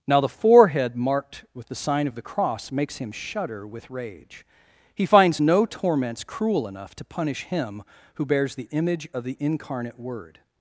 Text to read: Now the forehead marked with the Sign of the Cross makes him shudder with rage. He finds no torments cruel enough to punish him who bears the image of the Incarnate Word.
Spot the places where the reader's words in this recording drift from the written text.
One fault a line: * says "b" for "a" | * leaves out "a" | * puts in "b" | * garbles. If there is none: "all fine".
all fine